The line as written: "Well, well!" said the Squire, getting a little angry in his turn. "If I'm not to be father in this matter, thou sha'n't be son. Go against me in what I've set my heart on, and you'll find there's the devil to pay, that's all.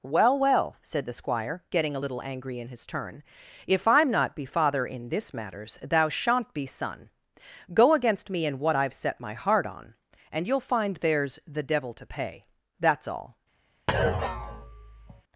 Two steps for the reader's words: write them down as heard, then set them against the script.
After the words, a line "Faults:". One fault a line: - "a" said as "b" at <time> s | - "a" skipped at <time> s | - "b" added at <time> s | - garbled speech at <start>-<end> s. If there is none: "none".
"Well, well!" said the Squire, getting a little angry in his turn. "If I'm not be father in this matters, thou sha'n't be son. Go against me in what I've set my heart on, and you'll find there's the devil to pay, that's all.
Faults:
- "to" skipped at 4.4 s
- "matter" said as "matters" at 5.3 s